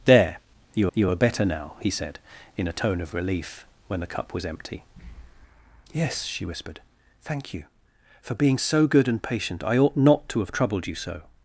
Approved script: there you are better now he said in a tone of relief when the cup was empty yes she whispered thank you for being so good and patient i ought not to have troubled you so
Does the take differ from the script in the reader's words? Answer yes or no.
yes